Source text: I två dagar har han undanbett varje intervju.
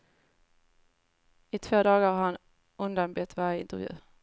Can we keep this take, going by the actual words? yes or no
yes